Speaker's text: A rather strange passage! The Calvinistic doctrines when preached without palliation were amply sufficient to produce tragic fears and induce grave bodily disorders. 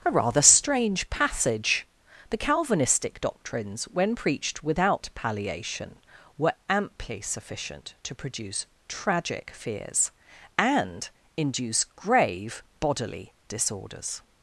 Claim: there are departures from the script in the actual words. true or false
false